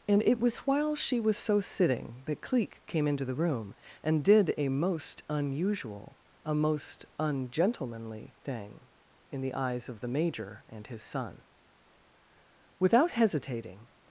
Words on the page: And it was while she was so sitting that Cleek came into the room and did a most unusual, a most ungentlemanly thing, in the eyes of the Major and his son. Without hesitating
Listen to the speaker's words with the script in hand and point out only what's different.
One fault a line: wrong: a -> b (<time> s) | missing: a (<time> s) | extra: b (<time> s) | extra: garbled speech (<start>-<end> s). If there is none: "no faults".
no faults